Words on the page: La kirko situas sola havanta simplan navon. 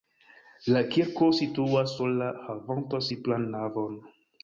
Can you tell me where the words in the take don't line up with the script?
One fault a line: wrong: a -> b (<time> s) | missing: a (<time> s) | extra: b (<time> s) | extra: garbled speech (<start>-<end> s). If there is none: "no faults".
no faults